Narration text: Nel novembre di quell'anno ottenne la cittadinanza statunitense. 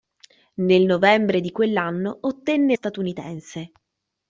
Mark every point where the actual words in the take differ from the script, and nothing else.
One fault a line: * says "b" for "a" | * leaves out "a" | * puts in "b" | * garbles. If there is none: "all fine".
* leaves out "la cittadinanza"